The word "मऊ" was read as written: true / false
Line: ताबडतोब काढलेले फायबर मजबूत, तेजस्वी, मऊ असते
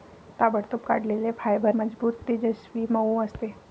true